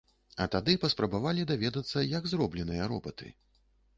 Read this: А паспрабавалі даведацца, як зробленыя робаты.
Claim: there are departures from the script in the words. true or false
true